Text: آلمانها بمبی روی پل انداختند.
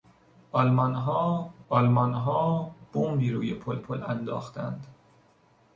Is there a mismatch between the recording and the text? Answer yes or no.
yes